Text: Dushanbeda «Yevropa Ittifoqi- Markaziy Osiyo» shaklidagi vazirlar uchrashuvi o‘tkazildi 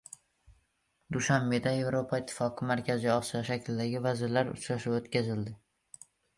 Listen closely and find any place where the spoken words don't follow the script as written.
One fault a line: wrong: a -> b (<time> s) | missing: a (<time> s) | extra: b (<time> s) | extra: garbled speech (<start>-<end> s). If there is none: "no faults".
no faults